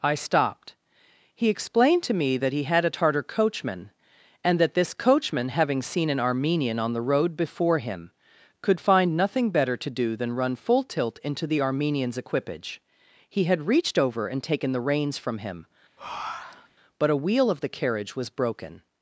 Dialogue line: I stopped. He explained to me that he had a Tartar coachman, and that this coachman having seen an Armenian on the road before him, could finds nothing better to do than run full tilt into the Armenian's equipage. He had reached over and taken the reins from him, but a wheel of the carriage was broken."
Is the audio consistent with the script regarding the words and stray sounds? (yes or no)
no